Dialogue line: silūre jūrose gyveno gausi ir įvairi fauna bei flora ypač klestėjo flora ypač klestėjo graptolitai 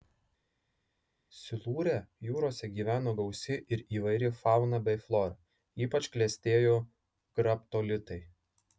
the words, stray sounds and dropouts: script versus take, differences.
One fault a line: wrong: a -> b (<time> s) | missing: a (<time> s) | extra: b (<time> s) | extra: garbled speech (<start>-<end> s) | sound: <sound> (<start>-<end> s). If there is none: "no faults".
missing: flora ypač klestėjo (6.8 s)